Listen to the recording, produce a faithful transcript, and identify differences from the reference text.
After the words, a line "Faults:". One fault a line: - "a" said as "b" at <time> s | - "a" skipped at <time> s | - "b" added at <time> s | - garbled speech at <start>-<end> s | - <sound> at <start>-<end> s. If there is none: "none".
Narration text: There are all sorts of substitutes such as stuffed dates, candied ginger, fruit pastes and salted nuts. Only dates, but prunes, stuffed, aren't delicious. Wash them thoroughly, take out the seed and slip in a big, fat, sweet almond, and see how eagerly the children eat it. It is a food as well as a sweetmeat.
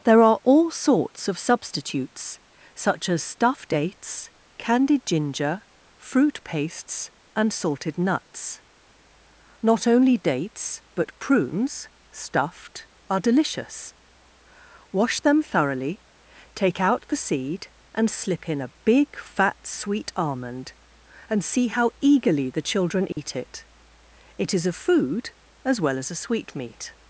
There are all sorts of substitutes such as stuffed dates, candied ginger, fruit pastes and salted nuts. Not only dates, but prunes, stuffed, are delicious. Wash them thoroughly, take out the seed and slip in a big, fat, sweet almond, and see how eagerly the children eat it. It is a food as well as a sweetmeat.
Faults:
- "Not" added at 9.6 s
- "aren't" said as "are" at 13.1 s
- dropout at 23.1-23.2 s